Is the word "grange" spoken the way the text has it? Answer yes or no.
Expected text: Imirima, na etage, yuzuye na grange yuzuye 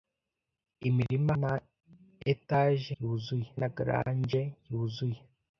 yes